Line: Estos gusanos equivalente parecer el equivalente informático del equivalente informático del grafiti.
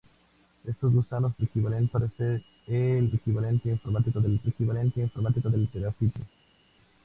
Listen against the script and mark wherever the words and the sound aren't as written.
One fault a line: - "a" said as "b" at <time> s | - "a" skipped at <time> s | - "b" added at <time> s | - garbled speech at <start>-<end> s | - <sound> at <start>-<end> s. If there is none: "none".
none